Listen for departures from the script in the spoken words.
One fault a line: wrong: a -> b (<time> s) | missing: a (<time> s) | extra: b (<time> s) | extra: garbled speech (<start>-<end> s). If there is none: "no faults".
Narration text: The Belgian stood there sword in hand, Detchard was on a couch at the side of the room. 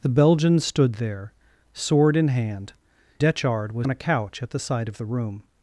no faults